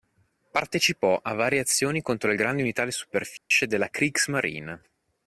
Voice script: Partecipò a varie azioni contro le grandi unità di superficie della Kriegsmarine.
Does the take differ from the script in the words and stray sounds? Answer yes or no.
yes